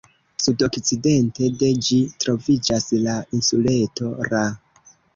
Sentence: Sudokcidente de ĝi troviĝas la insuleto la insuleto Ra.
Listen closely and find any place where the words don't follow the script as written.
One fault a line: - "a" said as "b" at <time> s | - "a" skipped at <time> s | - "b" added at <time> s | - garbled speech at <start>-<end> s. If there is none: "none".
- "la insuleto" skipped at 4.2 s